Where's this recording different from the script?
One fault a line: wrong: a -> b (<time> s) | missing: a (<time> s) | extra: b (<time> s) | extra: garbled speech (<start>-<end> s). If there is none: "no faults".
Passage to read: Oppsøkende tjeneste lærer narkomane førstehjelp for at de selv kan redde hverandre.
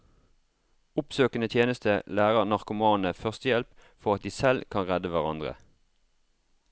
no faults